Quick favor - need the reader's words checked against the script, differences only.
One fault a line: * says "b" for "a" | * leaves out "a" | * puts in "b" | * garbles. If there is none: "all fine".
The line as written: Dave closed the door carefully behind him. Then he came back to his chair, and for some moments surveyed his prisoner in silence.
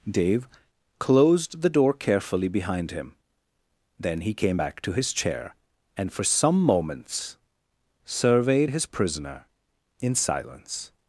all fine